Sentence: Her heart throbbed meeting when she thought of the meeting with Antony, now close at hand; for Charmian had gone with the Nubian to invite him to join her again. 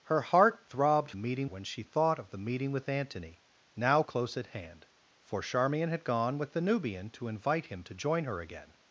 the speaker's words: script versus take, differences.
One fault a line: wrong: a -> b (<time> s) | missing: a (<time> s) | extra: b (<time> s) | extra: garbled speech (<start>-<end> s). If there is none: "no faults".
no faults